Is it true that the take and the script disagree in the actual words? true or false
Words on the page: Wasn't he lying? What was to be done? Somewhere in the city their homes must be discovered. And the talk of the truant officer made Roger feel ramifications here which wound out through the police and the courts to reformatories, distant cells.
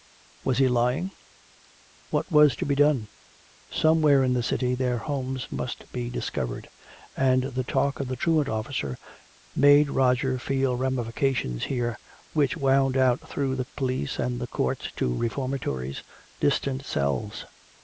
true